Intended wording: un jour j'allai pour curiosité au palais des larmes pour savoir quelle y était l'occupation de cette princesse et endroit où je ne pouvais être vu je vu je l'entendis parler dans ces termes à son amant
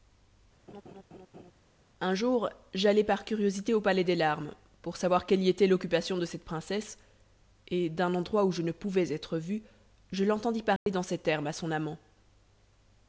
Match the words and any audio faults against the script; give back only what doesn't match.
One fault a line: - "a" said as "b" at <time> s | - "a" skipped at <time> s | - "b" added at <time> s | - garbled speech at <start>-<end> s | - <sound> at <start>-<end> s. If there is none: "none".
- laugh at 0.7-1.5 s
- "pour" said as "par" at 3.0 s
- "d'un" added at 7.9 s
- "vu je" skipped at 10.2 s
- dropout at 10.8-10.9 s